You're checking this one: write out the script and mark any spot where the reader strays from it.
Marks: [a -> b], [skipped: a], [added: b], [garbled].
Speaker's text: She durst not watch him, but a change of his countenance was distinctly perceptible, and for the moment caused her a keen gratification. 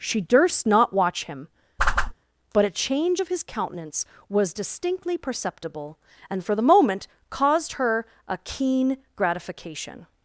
She durst not watch him, but a change of his countenance was distinctly perceptible, and for the moment caused her a keen gratification.